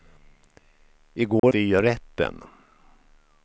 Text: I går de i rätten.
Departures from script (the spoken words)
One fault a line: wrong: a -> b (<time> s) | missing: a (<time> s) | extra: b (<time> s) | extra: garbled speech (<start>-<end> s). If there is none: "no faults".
no faults